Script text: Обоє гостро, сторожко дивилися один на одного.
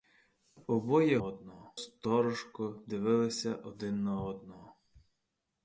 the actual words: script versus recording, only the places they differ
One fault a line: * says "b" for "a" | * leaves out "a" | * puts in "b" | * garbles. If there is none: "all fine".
* says "одного" for "гостро"